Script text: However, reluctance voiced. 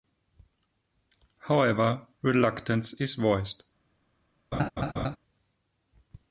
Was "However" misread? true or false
false